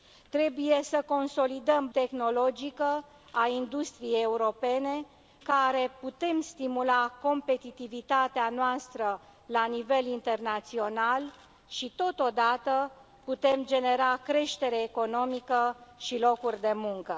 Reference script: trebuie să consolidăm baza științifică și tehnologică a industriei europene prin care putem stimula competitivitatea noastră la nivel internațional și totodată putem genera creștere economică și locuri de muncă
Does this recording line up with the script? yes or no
no